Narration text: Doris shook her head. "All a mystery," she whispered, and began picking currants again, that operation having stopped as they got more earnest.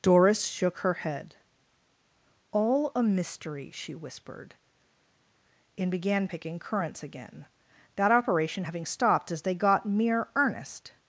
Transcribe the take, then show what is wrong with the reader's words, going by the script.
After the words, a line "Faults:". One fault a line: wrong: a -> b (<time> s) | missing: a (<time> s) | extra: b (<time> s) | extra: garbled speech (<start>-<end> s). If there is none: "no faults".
Doris shook her head. "All a mystery," she whispered, and began picking currants again, that operation having stopped as they got mere earnest.
Faults:
wrong: more -> mere (9.8 s)